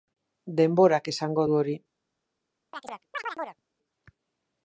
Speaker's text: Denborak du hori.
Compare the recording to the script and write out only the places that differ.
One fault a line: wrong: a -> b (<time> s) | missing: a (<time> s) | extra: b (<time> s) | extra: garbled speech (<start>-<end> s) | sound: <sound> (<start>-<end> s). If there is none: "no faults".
extra: esango (1.1 s)
sound: chirp (2.7-3.6 s)